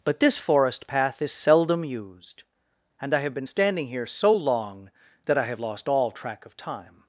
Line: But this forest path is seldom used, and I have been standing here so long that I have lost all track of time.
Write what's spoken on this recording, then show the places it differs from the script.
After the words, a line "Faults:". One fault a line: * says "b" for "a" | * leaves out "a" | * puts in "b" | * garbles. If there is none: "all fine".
But this forest path is seldom used, and I have been standing here so long that I have lost all track of time.
Faults:
all fine